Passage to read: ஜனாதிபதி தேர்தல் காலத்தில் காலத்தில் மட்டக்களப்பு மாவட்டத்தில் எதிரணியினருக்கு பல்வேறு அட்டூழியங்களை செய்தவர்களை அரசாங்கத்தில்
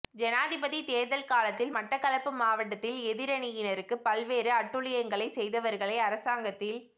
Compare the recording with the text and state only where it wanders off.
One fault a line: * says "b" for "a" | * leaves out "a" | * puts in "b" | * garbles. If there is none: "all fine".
* leaves out "காலத்தில்"